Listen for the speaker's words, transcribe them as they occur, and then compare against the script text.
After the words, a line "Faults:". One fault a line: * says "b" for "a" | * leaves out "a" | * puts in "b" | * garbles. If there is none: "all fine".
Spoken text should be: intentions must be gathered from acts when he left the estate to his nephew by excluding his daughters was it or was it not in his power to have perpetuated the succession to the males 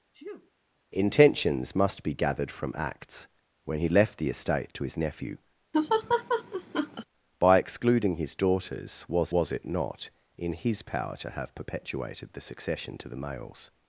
intentions must be gathered from acts when he left the estate to his nephew by excluding his daughters was was it not in his power to have perpetuated the succession to the males
Faults:
* leaves out "it or"